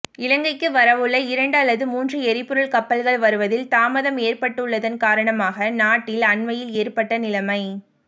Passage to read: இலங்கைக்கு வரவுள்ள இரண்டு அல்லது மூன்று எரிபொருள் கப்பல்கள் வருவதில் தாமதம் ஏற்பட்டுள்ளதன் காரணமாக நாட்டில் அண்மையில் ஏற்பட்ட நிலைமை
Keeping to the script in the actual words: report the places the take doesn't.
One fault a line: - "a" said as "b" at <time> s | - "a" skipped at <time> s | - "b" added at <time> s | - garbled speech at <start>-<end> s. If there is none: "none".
none